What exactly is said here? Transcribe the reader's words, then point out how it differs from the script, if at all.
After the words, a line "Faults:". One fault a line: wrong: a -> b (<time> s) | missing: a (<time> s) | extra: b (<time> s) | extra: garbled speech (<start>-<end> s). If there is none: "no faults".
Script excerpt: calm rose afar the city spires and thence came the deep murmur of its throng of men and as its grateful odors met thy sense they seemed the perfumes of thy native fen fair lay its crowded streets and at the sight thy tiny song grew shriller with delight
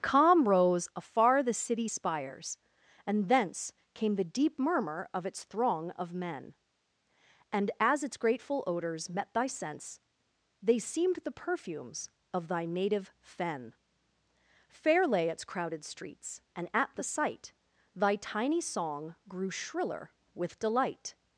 calm rose afar the city spires and thence came the deep murmur of its throng of men and as its grateful odors met thy sense they seemed the perfumes of thy native fen fair lay its crowded streets and at the sight thy tiny song grew shriller with delight
Faults:
no faults